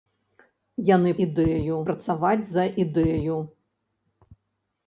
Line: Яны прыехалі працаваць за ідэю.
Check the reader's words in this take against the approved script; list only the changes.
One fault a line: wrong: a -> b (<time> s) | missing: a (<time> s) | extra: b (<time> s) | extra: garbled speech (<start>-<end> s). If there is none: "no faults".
wrong: прыехалі -> ідэю (1.3 s)